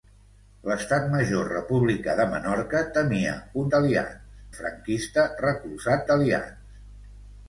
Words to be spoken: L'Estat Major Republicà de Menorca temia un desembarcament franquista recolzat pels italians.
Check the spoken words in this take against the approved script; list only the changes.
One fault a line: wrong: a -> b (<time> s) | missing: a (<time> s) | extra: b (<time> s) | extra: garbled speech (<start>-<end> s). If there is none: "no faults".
wrong: desembarcament -> italians (3.7 s)
missing: pels (6.1 s)